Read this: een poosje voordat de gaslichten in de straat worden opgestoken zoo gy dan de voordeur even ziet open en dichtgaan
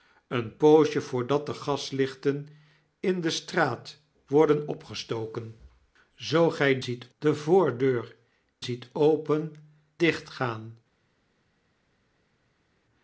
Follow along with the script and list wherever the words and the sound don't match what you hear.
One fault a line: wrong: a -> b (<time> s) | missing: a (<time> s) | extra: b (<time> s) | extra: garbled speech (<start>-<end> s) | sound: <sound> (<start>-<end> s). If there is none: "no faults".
wrong: dan -> ziet (6.8 s)
missing: even (8.2 s)
missing: en (9.5 s)